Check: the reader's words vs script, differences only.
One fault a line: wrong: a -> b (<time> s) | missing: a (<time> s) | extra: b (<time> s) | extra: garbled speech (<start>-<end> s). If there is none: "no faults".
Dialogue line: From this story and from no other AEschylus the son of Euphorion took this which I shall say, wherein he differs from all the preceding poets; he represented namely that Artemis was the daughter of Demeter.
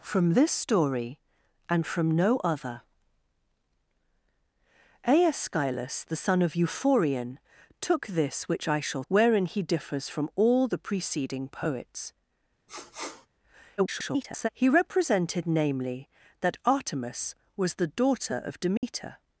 missing: say (9.0 s)
extra: garbled speech (13.8-14.5 s)